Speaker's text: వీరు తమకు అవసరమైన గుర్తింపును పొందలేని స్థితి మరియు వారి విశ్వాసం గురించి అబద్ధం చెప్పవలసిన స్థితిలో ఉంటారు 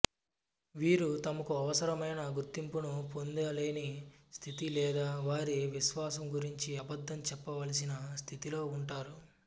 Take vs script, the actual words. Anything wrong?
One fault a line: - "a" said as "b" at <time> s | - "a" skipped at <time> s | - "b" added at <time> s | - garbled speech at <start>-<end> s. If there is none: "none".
- "మరియు" said as "లేదా" at 4.7 s